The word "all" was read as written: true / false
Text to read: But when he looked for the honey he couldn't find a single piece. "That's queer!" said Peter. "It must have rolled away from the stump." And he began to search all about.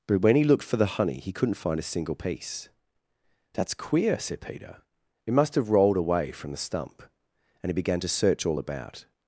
true